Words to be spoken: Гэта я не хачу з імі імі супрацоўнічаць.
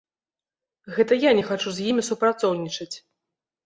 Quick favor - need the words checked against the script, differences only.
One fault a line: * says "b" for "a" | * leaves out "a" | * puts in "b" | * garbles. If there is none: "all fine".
* leaves out "імі"